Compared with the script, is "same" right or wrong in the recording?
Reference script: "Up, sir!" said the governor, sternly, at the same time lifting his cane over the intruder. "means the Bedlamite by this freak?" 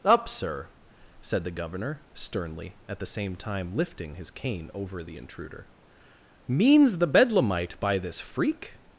right